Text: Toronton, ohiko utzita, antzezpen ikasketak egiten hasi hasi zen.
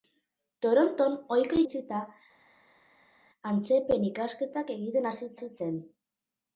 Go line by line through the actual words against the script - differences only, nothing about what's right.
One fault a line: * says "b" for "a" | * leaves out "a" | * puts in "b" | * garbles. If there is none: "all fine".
all fine